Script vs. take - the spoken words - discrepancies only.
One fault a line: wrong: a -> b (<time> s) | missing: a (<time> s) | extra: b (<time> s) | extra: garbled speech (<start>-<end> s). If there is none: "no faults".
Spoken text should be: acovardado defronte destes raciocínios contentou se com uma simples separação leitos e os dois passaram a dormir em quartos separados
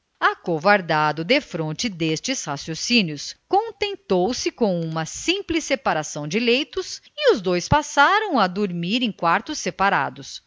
extra: de (6.3 s)